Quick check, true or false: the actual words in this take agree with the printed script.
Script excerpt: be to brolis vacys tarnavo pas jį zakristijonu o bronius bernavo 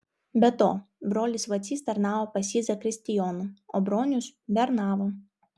true